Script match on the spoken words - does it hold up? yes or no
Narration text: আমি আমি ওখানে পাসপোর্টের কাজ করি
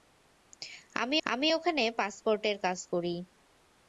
yes